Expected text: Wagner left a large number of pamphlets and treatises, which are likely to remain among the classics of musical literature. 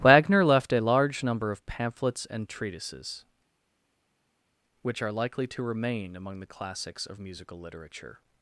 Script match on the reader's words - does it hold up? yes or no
yes